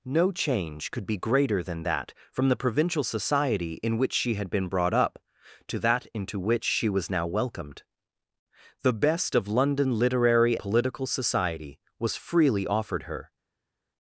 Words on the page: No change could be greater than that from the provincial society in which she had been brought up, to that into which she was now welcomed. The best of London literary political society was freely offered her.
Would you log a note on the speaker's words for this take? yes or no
no